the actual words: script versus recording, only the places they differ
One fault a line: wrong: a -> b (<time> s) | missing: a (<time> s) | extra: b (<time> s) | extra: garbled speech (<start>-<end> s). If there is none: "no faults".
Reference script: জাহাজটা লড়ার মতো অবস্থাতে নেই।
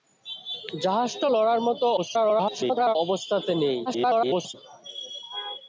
extra: garbled speech (2.0-3.0 s)
extra: garbled speech (3.9-4.5 s)